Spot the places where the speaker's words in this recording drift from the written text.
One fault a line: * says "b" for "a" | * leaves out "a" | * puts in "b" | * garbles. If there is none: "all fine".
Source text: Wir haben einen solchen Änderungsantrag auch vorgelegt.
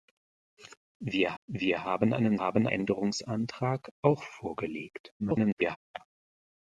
* puts in "wir"
* says "haben" for "solchen"
* garbles